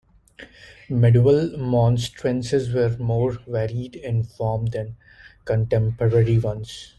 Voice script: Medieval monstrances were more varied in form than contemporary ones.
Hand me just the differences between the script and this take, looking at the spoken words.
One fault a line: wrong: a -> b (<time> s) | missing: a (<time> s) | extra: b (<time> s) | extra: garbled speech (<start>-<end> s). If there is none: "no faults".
no faults